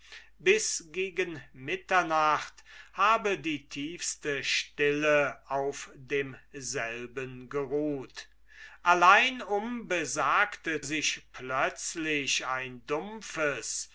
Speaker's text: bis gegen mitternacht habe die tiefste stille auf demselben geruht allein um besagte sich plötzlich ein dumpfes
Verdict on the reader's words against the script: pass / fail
pass